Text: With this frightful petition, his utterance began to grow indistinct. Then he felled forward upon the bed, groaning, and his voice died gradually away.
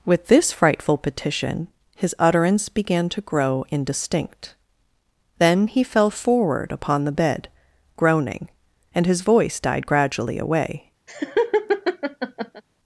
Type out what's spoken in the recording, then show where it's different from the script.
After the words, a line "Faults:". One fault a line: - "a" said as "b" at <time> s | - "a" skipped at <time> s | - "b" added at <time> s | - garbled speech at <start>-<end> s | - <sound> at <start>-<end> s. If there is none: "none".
With this frightful petition, his utterance began to grow indistinct. Then he fell forward upon the bed, groaning, and his voice died gradually away.
Faults:
- "felled" said as "fell" at 5.8 s
- laugh at 11.1-12.6 s